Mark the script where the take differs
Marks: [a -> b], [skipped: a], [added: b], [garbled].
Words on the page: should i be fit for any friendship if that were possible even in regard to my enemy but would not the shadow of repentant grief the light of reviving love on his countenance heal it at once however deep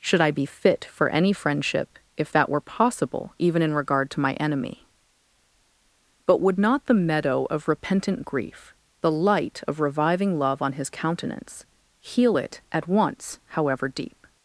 should i be fit for any friendship if that were possible even in regard to my enemy but would not the [shadow -> meadow] of repentant grief the light of reviving love on his countenance heal it at once however deep